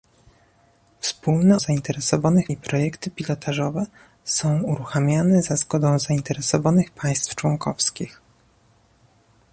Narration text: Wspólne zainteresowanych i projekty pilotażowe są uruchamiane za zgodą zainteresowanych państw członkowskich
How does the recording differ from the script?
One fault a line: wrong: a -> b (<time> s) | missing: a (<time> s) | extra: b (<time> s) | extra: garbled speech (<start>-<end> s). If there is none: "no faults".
no faults